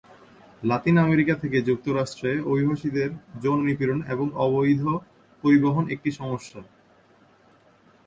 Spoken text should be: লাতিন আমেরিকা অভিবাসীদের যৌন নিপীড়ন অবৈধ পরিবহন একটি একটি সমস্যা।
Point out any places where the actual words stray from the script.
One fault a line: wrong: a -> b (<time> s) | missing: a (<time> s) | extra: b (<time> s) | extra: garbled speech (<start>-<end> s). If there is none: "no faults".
extra: থেকে যুক্তরাষ্ট্রে (1.4 s)
extra: এবং (4.1 s)
missing: একটি (6.1 s)